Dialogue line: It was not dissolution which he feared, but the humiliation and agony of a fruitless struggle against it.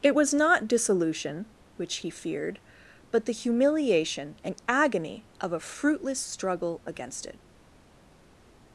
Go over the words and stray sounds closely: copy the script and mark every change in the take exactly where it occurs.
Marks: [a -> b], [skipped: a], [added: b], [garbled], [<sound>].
It was not dissolution which he feared, but the humiliation and agony of a fruitless struggle against it.